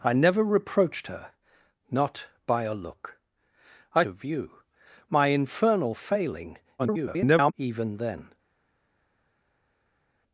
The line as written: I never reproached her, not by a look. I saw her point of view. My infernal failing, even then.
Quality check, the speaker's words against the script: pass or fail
fail